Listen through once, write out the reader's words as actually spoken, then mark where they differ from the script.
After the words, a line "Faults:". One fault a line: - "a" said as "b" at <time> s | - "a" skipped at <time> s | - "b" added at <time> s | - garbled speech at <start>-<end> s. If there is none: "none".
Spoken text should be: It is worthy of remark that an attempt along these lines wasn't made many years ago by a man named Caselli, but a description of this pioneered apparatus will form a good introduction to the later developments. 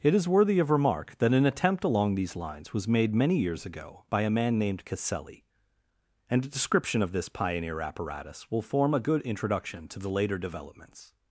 It is worthy of remark that an attempt along these lines was made many years ago by a man named Caselli, and a description of this pioneer apparatus will form a good introduction to the later developments.
Faults:
- "wasn't" said as "was" at 2.7 s
- "but" said as "and" at 6.3 s
- "pioneered" said as "pioneer" at 7.3 s